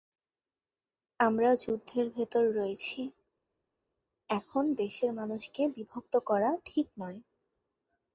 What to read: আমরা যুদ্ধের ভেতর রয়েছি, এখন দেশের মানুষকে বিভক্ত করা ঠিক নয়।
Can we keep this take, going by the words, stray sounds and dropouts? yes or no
yes